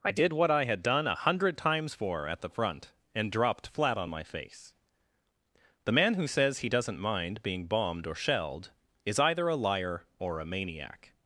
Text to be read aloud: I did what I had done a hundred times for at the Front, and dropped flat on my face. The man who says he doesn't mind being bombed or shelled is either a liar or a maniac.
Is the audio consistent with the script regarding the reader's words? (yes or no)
yes